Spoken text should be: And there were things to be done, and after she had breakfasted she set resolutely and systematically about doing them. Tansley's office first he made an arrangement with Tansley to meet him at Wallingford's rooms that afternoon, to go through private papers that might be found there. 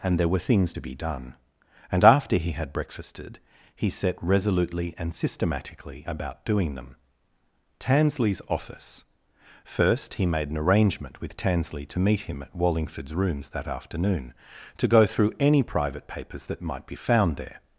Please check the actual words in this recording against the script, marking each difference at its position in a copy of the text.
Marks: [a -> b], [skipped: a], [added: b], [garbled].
And there were things to be done, and after [she -> he] had breakfasted [she -> he] set resolutely and systematically about doing them. Tansley's office first he made an arrangement with Tansley to meet him at Wallingford's rooms that afternoon, to go through [added: any] private papers that might be found there.